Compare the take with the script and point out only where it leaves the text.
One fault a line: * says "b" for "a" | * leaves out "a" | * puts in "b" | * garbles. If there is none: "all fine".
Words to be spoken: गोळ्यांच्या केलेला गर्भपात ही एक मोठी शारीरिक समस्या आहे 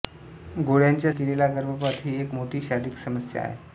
all fine